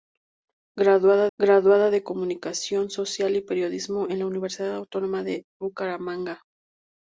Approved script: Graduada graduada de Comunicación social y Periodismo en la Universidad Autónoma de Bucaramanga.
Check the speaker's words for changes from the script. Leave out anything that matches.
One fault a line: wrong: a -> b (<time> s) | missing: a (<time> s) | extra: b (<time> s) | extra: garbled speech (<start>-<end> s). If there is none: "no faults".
no faults